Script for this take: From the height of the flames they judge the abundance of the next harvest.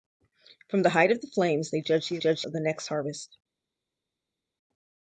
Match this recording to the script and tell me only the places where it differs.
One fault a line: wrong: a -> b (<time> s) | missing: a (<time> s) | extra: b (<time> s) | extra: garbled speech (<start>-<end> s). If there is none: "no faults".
wrong: abundance -> judge (2.2 s)